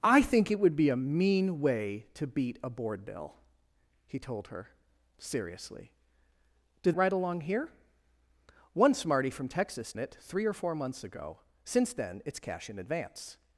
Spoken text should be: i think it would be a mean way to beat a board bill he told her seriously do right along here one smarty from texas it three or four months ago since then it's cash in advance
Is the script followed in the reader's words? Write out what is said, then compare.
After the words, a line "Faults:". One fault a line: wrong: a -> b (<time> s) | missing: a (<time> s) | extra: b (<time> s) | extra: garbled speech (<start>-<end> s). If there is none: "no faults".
i think it would be a mean way to beat a board bill he told her seriously do right along here one smarty from texas it three or four months ago since then it's cash in advance
Faults:
no faults